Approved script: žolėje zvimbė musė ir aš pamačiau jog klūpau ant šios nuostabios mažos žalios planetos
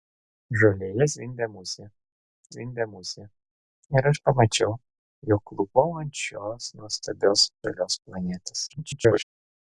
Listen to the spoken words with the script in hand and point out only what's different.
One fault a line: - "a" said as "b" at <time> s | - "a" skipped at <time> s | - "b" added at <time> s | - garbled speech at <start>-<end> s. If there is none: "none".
- "zvimbė musė" added at 2.5 s
- "mažos" skipped at 7.5 s
- garbled speech at 8.7-9.2 s